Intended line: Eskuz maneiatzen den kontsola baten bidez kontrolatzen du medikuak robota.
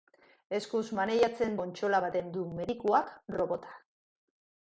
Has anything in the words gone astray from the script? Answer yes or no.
yes